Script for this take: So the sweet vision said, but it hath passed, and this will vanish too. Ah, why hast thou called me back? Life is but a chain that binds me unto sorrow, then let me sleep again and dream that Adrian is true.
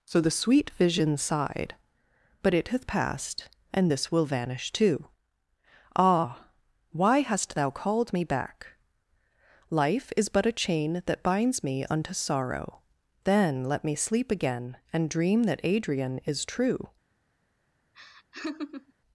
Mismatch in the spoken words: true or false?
true